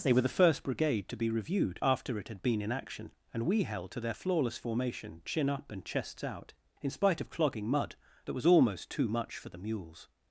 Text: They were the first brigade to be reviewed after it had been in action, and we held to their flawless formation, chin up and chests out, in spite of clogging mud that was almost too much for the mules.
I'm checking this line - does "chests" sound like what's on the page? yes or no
yes